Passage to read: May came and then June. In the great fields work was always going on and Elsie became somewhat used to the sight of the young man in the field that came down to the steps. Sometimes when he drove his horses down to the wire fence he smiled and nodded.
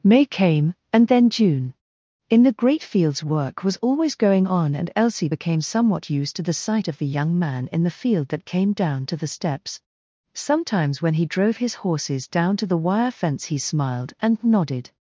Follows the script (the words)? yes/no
yes